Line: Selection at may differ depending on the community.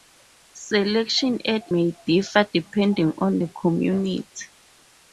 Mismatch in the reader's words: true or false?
false